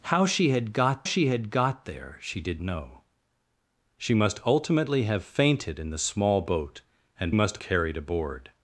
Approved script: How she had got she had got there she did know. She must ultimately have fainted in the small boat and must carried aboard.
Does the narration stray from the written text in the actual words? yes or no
no